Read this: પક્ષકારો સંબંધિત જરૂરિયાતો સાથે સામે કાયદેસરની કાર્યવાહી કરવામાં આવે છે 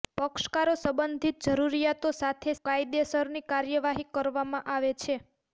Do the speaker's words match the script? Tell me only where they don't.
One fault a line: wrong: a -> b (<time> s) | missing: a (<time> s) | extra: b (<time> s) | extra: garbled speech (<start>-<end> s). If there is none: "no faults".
missing: સામે (2.5 s)